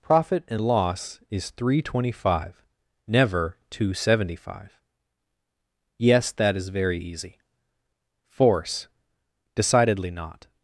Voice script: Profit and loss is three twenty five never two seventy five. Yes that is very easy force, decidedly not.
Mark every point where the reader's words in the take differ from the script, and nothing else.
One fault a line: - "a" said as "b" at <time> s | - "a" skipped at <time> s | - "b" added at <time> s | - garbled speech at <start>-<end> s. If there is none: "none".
none